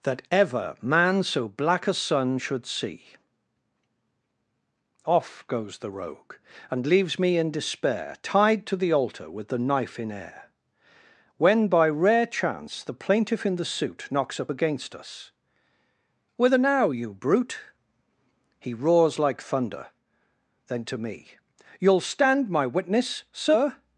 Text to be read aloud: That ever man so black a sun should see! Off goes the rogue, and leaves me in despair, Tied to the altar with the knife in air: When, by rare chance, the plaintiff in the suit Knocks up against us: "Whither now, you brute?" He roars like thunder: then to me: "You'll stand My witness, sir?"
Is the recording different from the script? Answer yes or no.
no